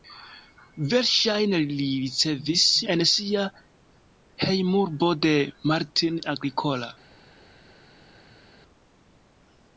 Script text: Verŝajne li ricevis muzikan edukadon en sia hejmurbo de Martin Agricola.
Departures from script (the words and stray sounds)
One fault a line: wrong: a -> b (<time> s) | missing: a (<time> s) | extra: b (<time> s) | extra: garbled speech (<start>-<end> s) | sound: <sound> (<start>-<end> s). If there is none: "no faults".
missing: muzikan edukadon (2.6 s)